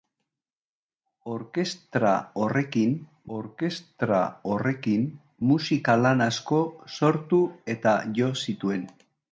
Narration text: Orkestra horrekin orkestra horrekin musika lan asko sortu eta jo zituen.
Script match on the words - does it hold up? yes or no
yes